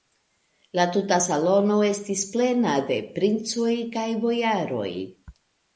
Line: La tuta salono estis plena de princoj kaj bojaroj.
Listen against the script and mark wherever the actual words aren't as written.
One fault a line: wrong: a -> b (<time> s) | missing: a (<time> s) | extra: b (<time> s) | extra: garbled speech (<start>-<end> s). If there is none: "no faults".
no faults